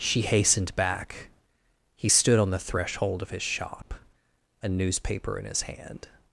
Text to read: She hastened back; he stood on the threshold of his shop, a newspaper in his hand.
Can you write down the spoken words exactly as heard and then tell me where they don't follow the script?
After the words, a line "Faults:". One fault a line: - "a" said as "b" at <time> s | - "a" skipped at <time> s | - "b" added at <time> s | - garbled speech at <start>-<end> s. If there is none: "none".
She hastened back; he stood on the threshold of his shop, a newspaper in his hand.
Faults:
none